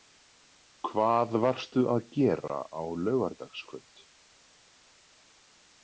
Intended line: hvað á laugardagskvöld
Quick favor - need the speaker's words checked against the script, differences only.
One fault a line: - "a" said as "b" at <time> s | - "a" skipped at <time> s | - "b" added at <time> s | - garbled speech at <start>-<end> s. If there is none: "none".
- "varstu að gera" added at 1.4 s